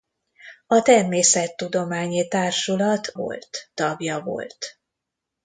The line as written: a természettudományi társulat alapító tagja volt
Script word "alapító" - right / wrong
wrong